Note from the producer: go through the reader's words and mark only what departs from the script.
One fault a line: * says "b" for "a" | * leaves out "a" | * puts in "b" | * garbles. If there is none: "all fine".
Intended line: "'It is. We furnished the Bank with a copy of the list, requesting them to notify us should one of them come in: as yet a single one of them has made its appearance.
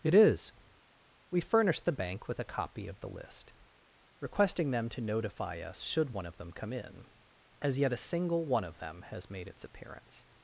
all fine